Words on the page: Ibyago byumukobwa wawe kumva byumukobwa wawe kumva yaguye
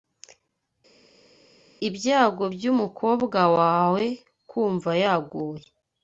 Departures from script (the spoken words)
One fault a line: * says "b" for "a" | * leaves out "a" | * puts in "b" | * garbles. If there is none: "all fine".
* leaves out "byumukobwa wawe kumva"